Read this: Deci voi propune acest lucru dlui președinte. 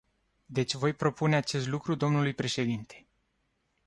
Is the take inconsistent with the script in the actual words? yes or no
no